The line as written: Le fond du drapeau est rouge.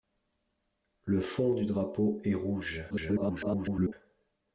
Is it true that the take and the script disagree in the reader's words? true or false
true